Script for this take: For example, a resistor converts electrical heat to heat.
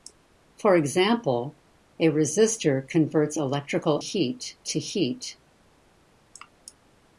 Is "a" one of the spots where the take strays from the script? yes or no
no